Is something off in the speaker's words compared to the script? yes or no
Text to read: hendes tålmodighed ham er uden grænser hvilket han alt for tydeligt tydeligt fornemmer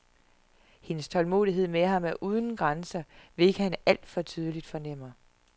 yes